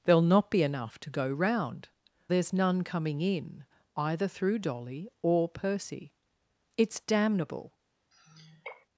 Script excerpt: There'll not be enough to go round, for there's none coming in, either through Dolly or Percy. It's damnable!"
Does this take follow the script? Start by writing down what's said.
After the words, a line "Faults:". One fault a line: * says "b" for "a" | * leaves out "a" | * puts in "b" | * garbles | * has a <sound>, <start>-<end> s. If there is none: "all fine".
There'll not be enough to go round, there's none coming in, either through Dolly or Percy. It's damnable!"
Faults:
* leaves out "for"
* has a sigh, 8.1-8.9 s